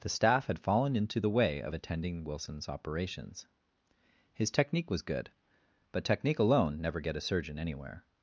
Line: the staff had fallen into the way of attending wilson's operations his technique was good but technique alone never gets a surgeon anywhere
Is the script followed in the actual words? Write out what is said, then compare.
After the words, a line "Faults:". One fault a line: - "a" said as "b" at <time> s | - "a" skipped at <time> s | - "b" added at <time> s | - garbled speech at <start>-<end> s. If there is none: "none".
the staff had fallen into the way of attending wilson's operations his technique was good but technique alone never get a surgeon anywhere
Faults:
- "gets" said as "get" at 7.0 s